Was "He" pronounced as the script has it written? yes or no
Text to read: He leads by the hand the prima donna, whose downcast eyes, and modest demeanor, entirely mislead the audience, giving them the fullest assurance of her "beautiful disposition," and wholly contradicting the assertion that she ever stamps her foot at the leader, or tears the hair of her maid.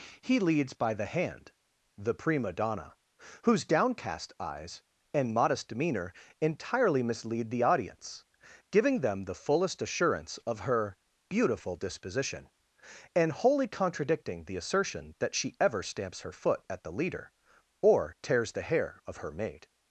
yes